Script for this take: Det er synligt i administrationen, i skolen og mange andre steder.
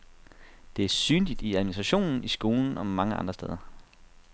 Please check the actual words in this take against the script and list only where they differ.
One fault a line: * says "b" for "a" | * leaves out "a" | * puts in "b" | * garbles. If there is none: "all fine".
all fine